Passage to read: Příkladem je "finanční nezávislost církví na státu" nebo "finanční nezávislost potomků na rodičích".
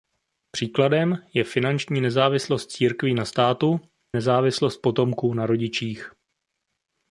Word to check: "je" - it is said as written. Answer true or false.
true